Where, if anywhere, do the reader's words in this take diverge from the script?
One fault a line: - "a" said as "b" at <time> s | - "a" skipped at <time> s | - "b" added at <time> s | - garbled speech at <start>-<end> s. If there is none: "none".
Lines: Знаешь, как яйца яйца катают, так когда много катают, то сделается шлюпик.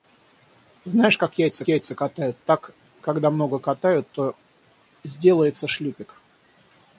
none